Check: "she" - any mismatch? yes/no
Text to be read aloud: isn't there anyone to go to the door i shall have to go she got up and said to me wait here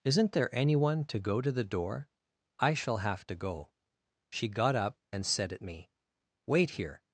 no